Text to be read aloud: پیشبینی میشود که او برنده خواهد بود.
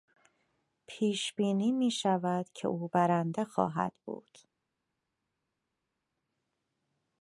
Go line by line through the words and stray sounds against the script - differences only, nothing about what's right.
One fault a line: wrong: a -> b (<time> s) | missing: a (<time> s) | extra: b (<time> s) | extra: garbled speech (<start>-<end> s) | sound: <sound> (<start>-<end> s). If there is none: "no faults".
no faults